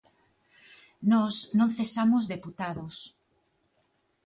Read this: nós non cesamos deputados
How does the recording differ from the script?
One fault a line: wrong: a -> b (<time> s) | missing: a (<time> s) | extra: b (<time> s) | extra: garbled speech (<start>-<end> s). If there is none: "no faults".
no faults